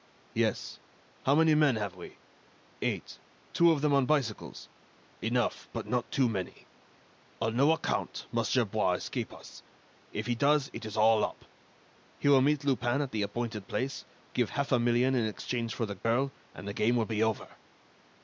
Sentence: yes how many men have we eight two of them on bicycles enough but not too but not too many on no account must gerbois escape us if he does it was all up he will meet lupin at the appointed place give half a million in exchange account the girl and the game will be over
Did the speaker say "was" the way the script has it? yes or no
no